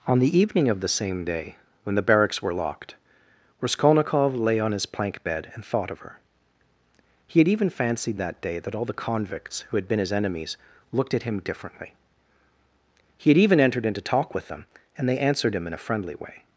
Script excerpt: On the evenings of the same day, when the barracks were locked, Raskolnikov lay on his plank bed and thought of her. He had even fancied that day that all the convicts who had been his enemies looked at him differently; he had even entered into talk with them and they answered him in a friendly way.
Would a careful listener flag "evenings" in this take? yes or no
yes